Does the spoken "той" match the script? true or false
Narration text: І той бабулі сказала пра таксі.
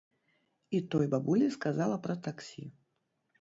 true